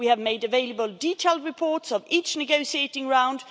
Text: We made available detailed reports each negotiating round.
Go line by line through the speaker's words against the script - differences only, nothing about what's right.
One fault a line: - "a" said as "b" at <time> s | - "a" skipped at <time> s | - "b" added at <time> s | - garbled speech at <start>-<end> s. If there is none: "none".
- "have" added at 0.1 s
- "of" added at 1.9 s